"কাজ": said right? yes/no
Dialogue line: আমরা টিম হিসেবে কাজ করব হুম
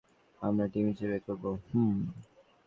no